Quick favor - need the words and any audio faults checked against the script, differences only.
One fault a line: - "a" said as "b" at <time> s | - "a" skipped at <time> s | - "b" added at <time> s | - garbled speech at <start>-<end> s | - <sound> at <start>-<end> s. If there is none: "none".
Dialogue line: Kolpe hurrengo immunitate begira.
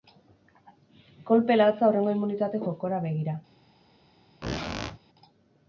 - "latza" added at 1.6 s
- "jokora" added at 2.6 s
- squeak at 4.4-5.0 s